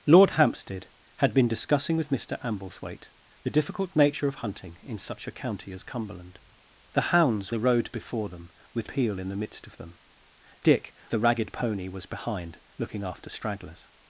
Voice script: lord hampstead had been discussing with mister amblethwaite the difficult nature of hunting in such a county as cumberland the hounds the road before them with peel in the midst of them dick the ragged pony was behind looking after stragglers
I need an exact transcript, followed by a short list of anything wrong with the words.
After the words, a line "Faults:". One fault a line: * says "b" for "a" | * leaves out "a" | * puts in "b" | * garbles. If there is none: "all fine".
lord hampstead had been discussing with mister amblethwaite the difficult nature of hunting in such a county as cumberland the hounds the road before them with peel in the midst of them dick the ragged pony was behind looking after stragglers
Faults:
all fine